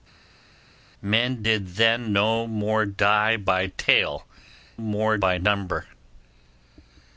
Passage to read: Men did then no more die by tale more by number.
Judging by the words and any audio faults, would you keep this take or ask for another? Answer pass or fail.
pass